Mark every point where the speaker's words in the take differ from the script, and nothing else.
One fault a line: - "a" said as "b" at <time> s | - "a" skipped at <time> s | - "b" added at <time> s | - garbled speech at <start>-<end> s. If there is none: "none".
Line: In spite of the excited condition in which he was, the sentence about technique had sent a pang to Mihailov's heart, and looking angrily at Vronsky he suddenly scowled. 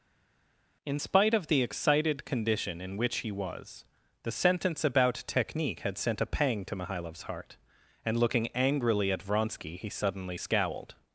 none